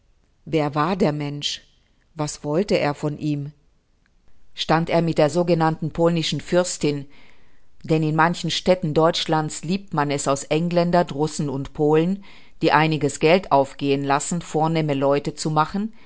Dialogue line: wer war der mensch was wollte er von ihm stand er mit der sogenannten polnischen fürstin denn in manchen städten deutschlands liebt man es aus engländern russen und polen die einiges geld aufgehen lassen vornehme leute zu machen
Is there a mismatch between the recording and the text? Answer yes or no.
no